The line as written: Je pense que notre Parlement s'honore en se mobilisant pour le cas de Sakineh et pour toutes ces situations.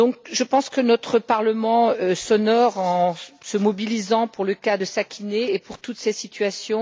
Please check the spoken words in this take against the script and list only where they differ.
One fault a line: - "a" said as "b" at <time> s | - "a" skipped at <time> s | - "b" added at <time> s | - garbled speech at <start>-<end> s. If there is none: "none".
none